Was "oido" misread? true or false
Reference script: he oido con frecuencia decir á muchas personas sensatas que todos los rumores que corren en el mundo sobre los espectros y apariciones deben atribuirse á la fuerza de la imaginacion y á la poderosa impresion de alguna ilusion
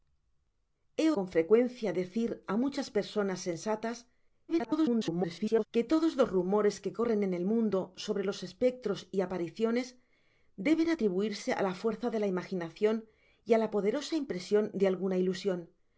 true